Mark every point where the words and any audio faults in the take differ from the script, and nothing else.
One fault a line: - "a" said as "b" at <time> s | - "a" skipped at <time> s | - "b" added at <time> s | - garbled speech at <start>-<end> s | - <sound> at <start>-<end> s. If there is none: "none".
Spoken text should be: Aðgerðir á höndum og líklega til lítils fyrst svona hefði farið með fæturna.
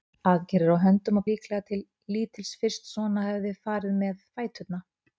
none